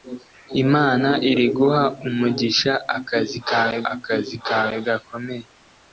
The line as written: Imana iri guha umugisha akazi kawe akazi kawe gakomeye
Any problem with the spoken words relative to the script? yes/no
no